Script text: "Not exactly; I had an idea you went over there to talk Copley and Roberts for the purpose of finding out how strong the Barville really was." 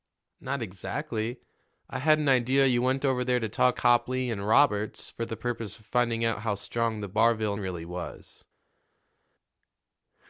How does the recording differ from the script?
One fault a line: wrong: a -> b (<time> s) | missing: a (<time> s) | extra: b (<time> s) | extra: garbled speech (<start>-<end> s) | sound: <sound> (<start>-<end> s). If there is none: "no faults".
no faults